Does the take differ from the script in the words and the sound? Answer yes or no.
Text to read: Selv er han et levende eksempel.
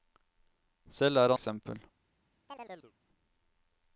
yes